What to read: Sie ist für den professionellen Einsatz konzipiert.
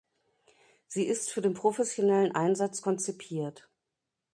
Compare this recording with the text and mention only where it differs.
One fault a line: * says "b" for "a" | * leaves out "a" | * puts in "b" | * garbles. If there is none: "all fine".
all fine